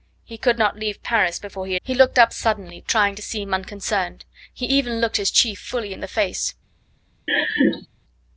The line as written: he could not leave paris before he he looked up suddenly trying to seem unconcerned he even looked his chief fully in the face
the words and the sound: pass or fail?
fail